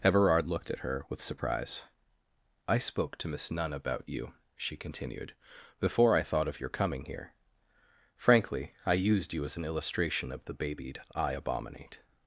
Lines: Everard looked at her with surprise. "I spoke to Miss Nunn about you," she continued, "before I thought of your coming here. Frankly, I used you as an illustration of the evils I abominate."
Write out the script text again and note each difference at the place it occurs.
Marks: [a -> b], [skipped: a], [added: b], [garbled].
Everard looked at her with surprise. "I spoke to Miss Nunn about you," she continued, "before I thought of your coming here. Frankly, I used you as an illustration of the [evils -> babied] I abominate."